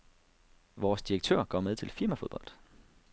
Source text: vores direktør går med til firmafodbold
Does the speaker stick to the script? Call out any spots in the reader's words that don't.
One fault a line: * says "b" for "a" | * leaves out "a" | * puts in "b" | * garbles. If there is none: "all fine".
all fine